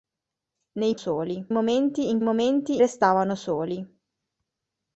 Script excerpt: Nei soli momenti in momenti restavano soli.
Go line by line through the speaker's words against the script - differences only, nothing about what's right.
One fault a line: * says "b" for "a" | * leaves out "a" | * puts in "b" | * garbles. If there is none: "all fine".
all fine